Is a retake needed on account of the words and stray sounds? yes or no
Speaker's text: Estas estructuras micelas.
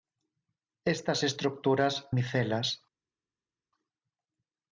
no